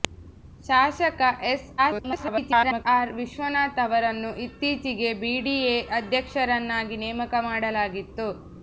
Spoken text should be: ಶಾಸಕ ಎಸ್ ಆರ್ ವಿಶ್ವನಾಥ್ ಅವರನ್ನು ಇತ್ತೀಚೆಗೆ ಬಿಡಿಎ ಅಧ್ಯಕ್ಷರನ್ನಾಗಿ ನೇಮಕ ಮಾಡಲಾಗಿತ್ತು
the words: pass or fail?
fail